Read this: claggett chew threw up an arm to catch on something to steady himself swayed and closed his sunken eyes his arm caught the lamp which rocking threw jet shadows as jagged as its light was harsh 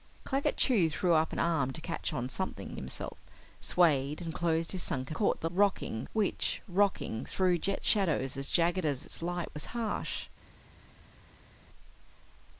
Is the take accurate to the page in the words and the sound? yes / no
no